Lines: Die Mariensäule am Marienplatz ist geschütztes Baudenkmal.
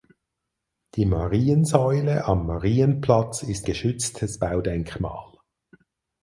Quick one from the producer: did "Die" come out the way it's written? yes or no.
yes